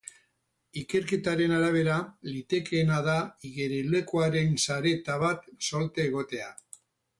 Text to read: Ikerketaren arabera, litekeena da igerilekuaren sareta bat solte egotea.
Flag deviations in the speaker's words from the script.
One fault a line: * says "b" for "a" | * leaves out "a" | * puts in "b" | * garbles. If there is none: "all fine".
all fine